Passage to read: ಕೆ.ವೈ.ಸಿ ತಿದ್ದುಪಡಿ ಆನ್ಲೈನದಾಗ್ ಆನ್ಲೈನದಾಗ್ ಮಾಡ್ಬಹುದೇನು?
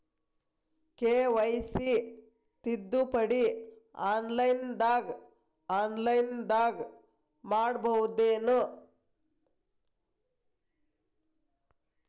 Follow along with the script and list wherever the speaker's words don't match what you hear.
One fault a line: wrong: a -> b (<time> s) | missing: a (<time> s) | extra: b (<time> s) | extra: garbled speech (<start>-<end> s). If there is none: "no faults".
no faults